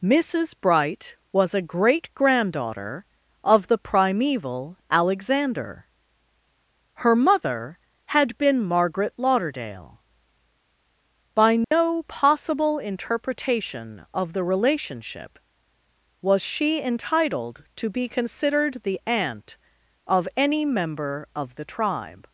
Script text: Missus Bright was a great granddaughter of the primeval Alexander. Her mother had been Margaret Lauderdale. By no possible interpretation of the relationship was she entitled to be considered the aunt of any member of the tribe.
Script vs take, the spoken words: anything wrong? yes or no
no